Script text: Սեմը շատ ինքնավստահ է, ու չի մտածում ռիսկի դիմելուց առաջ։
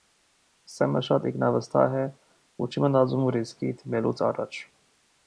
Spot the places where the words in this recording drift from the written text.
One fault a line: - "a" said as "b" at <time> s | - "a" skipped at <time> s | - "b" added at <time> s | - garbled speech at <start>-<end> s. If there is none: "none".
none